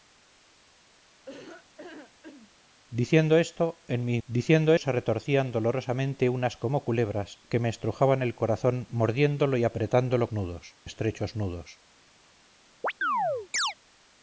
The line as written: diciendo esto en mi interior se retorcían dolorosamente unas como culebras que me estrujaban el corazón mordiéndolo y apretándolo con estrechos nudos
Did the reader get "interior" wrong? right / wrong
wrong